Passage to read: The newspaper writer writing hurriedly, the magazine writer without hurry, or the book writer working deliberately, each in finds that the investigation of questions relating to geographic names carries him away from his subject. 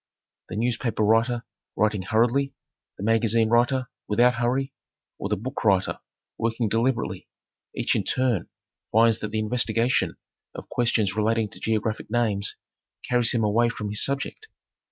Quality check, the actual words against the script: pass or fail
fail